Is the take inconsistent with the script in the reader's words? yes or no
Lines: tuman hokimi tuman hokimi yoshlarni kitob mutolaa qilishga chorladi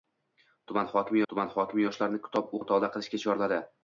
no